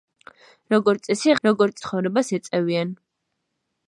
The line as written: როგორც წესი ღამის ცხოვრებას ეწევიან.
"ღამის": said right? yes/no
no